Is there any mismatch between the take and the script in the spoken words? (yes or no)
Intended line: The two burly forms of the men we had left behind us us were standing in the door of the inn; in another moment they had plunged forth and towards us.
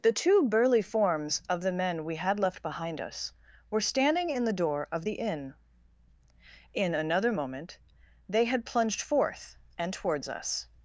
yes